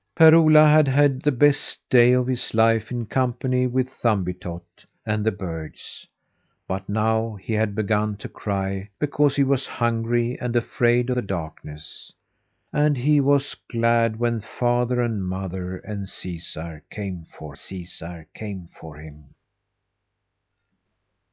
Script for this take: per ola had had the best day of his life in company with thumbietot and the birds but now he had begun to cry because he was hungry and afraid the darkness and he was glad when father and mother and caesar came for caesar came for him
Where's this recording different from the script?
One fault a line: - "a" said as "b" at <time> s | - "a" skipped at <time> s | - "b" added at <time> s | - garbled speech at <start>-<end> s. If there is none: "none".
none